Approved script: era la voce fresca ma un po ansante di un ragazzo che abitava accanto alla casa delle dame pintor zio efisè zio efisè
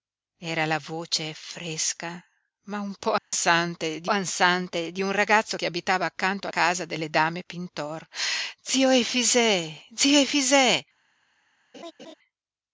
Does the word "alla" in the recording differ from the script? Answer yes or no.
yes